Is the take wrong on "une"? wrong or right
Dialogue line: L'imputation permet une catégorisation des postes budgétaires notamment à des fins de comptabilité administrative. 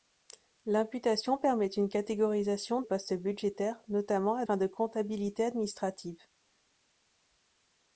right